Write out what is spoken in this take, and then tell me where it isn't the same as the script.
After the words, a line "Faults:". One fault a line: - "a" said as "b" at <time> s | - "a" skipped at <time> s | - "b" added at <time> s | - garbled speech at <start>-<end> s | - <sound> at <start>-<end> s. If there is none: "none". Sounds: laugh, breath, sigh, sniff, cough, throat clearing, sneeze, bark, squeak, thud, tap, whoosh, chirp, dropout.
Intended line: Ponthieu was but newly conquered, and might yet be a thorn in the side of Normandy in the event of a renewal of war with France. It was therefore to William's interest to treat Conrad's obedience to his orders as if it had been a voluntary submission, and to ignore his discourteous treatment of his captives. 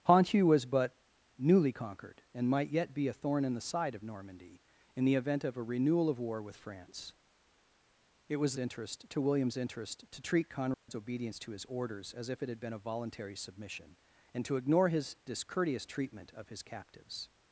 Ponthieu was but newly conquered, and might yet be a thorn in the side of Normandy in the event of a renewal of war with France. It was interest to William's interest to treat Conrad's obedience to his orders as if it had been a voluntary submission, and to ignore his discourteous treatment of his captives.
Faults:
- "therefore" said as "interest" at 8.6 s
- dropout at 10.7-10.9 s